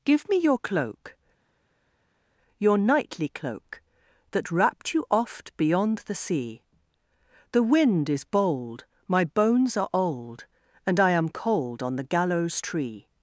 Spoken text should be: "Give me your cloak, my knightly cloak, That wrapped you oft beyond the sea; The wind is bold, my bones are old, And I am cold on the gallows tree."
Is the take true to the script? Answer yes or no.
no